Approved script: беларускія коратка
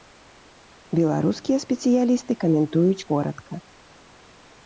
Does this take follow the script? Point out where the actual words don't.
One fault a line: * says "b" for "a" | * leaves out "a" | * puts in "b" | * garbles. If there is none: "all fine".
* puts in "спецыялісты каментуюць"